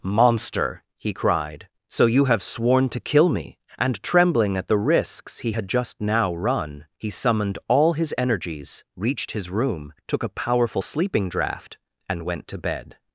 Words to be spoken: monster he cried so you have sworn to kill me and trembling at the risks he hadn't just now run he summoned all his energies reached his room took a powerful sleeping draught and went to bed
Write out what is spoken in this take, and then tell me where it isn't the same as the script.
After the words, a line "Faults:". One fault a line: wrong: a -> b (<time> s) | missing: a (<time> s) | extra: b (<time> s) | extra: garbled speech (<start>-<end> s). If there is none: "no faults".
monster he cried so you have sworn to kill me and trembling at the risks he had just now run he summoned all his energies reached his room took a powerful sleeping draught and went to bed
Faults:
wrong: hadn't -> had (5.5 s)